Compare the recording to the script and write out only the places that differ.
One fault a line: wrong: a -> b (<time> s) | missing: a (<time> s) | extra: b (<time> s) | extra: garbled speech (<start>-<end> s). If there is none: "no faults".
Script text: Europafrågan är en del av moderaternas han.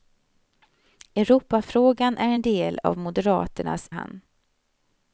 no faults